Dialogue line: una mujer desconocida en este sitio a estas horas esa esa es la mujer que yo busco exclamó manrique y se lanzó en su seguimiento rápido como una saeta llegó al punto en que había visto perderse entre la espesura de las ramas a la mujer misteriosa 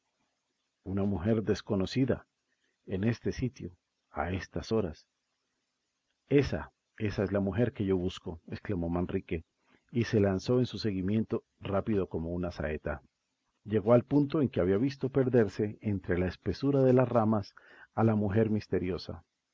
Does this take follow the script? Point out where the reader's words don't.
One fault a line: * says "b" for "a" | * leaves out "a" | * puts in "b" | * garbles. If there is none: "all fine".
all fine